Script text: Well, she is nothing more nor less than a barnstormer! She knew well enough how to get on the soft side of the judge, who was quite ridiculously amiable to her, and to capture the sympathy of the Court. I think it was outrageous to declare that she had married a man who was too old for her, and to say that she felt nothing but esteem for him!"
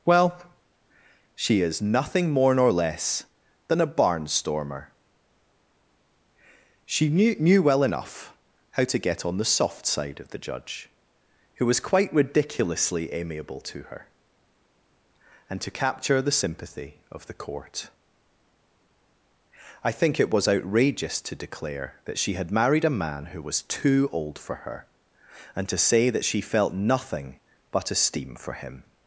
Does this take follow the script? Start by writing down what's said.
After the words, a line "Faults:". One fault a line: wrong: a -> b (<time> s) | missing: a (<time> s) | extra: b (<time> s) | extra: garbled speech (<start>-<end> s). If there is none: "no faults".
Well, she is nothing more nor less than a barnstormer! She knew knew well enough how to get on the soft side of the judge, who was quite ridiculously amiable to her, and to capture the sympathy of the Court. I think it was outrageous to declare that she had married a man who was too old for her, and to say that she felt nothing but esteem for him!"
Faults:
extra: knew (7.4 s)